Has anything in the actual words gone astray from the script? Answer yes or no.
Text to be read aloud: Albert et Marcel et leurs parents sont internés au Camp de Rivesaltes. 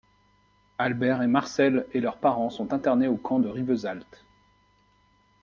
no